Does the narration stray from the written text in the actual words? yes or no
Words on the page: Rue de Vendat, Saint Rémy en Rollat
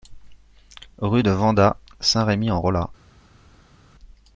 no